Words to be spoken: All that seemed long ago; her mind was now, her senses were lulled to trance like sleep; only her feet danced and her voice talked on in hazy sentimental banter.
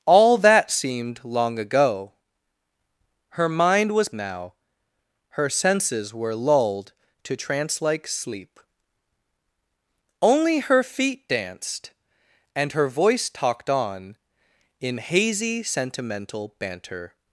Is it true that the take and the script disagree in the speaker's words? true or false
false